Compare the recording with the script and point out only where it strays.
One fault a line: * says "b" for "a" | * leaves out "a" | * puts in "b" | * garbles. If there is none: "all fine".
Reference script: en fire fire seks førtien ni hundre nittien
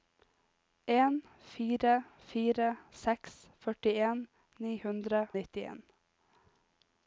all fine